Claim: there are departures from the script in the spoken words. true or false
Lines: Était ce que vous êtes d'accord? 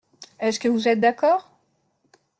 true